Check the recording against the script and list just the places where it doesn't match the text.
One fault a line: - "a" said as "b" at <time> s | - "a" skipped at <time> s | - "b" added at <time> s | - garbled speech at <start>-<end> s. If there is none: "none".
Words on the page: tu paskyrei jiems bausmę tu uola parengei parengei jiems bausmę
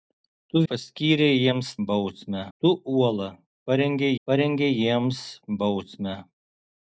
none